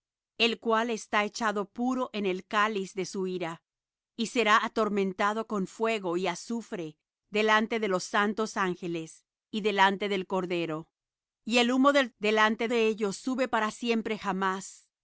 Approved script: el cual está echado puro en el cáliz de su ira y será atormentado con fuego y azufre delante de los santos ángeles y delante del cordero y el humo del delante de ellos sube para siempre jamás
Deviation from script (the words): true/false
false